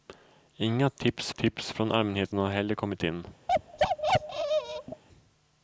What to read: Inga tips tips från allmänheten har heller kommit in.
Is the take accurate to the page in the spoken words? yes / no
yes